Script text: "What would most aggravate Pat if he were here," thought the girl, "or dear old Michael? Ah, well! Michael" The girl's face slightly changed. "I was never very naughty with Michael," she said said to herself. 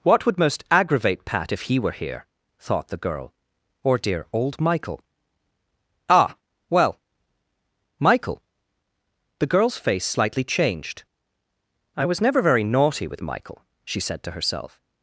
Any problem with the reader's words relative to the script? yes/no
yes